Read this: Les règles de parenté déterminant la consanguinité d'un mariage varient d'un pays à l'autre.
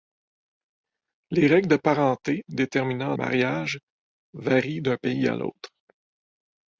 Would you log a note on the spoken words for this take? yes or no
yes